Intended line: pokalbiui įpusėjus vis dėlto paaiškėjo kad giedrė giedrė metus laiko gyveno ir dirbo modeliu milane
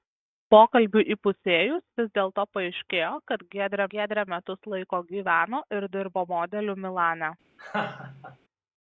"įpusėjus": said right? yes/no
yes